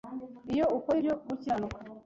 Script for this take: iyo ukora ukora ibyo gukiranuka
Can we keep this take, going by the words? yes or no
no